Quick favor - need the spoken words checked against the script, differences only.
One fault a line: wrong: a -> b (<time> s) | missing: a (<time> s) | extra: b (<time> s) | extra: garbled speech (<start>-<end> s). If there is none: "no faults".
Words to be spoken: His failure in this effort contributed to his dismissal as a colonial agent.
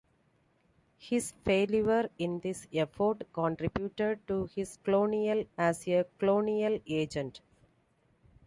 wrong: dismissal -> colonial (4.8 s)